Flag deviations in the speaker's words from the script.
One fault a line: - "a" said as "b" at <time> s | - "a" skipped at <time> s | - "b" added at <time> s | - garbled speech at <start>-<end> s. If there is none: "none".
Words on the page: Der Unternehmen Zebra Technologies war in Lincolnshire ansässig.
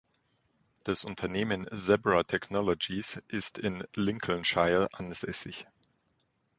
- "Der" said as "Das" at 0.8 s
- "war" said as "ist" at 3.3 s